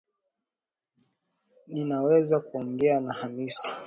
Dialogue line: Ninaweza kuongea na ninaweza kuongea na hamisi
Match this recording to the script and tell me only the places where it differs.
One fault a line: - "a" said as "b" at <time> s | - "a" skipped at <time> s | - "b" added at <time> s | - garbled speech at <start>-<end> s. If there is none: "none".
- "ninaweza kuongea na" skipped at 3.1 s